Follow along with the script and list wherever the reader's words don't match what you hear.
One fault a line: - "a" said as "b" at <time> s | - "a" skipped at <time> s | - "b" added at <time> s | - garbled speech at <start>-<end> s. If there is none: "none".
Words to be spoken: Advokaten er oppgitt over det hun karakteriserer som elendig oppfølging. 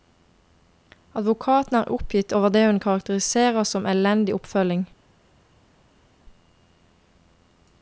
none